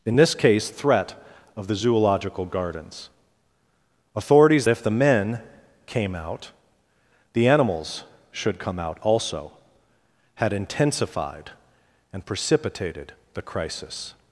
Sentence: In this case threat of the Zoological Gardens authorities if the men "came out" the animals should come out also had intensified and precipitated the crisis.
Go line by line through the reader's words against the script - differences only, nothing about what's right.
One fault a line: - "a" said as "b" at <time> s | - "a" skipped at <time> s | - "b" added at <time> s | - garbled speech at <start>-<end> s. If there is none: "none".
none